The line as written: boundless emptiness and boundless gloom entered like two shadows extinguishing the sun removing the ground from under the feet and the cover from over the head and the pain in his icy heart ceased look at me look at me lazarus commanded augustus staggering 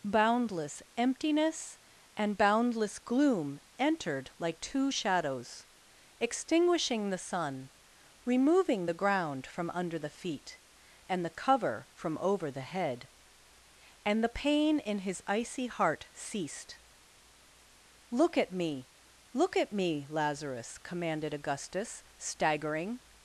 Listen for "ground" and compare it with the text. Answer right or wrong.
right